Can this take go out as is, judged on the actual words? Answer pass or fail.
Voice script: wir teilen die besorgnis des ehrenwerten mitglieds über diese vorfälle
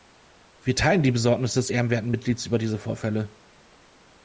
pass